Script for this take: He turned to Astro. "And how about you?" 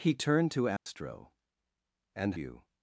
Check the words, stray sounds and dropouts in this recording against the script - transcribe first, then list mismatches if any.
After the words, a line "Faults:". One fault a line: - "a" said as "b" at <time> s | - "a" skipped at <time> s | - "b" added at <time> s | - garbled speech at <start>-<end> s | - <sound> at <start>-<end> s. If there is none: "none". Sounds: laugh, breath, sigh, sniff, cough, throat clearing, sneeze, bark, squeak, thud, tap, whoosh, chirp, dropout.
He turned to Astro. "And you?"
Faults:
- dropout at 0.8-0.9 s
- "how about" skipped at 2.3 s